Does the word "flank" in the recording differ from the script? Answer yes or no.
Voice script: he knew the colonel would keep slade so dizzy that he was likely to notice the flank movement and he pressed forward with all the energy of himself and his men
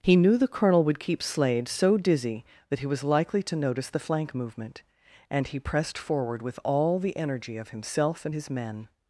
no